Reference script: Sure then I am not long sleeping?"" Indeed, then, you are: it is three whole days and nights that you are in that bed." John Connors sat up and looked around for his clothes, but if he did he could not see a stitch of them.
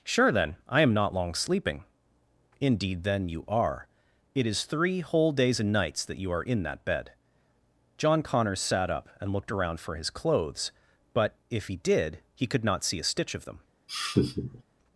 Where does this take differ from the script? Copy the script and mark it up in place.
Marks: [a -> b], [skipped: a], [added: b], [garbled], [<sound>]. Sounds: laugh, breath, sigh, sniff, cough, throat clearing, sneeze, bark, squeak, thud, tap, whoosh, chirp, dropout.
Sure then I am not long sleeping?"" Indeed, then, you are: it is three whole days and nights that you are in that bed." John Connors sat up and looked around for his clothes, but if he did he could not see a stitch of them. [laugh]